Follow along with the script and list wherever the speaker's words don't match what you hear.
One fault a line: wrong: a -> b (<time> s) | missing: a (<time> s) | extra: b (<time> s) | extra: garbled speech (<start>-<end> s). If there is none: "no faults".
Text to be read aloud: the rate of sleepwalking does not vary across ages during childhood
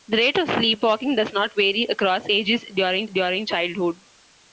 extra: during (3.1 s)